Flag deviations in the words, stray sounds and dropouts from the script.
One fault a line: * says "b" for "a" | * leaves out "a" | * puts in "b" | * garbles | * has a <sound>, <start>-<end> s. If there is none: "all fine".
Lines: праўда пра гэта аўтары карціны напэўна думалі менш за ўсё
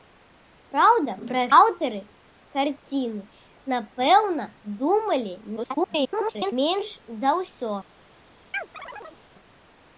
* leaves out "гэта"
* garbles
* has a chirp, 8.5-9.2 s